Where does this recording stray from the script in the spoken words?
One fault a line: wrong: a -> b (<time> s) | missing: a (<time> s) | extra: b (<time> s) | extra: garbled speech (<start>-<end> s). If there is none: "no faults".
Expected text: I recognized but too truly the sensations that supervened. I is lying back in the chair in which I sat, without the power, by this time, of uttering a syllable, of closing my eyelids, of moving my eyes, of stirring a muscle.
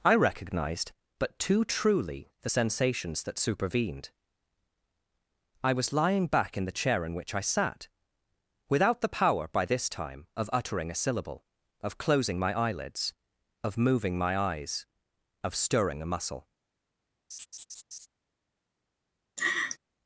wrong: is -> was (5.7 s)